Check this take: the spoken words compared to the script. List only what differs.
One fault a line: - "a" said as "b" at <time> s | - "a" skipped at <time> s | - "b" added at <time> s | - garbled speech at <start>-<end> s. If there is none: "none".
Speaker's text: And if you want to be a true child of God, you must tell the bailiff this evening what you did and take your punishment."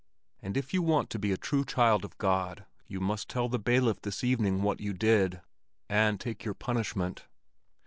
none